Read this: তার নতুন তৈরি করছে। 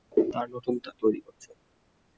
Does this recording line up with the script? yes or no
yes